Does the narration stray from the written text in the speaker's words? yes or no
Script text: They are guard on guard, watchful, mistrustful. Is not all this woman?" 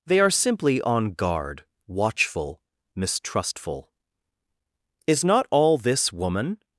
yes